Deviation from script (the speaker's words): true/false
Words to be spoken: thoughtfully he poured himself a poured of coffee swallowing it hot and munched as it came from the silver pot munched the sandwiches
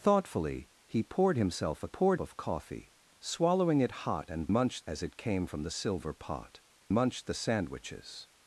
false